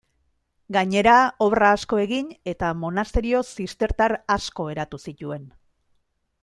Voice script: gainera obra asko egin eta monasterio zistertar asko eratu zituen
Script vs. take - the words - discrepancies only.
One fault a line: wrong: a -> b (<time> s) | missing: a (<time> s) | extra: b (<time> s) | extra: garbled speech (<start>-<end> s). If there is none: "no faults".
no faults